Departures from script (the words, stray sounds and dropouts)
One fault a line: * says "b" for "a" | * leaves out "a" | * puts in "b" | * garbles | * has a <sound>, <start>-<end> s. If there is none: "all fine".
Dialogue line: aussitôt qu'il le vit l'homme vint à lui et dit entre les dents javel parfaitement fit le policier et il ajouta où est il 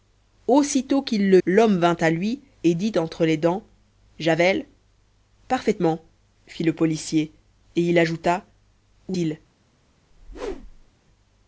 * leaves out "vit"
* leaves out "est"
* has a whoosh, 10.1-10.9 s